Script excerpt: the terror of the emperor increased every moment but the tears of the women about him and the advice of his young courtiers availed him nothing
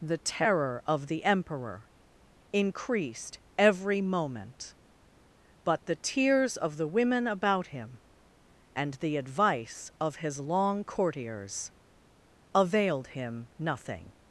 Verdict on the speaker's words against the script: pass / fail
fail